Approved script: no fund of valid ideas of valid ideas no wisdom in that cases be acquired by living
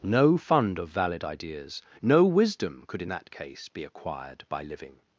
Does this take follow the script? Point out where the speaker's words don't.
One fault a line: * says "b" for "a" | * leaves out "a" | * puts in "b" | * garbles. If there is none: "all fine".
* leaves out "of valid ideas"
* puts in "could"
* says "case" for "cases"